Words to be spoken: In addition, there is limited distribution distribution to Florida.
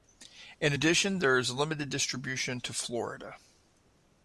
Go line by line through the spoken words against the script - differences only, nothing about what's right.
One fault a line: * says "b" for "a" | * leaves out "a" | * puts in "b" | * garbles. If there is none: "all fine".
* leaves out "distribution"